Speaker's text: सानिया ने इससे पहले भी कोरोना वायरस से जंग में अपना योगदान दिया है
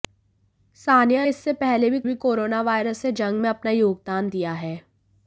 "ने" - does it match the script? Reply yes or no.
no